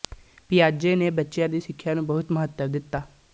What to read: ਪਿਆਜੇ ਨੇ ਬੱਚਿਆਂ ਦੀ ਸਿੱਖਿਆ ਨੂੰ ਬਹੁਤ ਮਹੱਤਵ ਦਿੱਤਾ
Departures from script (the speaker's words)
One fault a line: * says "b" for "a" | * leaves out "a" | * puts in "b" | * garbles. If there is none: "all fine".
all fine